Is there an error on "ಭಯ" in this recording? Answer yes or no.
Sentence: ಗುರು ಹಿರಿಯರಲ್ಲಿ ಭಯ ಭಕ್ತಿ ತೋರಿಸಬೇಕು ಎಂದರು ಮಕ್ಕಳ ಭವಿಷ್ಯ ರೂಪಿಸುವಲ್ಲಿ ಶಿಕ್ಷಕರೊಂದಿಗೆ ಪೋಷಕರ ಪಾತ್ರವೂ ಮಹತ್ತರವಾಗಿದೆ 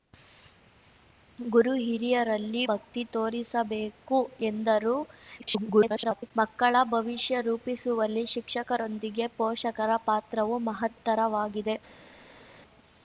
yes